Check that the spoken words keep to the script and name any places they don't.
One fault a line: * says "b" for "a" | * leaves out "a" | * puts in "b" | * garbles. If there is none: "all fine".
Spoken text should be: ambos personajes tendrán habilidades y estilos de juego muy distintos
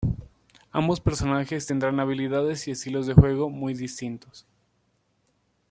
all fine